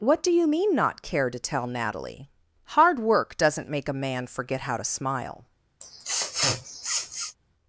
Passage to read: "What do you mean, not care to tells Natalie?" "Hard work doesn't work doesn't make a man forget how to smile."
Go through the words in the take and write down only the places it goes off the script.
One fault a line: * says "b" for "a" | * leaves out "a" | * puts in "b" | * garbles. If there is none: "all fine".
* says "tell" for "tells"
* leaves out "work doesn't"